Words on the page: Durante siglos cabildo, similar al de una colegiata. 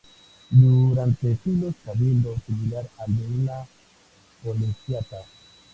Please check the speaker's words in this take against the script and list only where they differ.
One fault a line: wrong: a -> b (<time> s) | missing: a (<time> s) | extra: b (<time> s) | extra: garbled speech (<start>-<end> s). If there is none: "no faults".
no faults